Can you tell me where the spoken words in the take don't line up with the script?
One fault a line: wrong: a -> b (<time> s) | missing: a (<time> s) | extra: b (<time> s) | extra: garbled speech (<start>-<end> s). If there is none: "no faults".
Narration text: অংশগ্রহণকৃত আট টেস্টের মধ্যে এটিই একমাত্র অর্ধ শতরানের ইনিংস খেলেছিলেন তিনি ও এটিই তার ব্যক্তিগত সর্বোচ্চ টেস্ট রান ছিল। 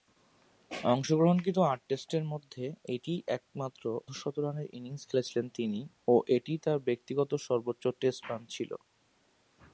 missing: অর্ধ (3.8 s)